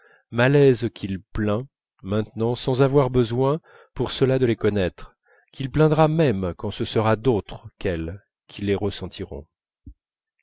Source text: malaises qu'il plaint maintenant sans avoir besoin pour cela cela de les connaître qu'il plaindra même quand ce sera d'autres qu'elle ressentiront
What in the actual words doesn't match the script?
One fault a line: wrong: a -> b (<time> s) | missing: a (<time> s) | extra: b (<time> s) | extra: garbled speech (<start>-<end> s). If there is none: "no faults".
missing: cela (4.4 s)
extra: qui les (8.5 s)